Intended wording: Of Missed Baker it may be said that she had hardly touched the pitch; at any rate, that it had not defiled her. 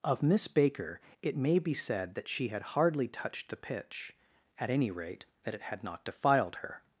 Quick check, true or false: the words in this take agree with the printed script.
false